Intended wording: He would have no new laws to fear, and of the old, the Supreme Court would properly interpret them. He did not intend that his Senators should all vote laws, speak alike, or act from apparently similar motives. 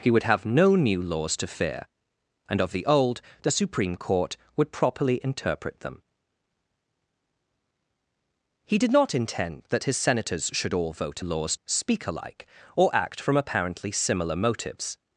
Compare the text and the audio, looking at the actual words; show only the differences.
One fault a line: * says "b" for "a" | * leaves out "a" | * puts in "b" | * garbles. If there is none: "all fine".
all fine